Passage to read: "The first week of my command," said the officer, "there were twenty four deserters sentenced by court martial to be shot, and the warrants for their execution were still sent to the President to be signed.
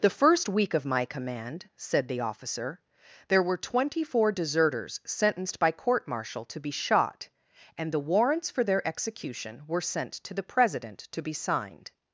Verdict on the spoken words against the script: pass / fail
fail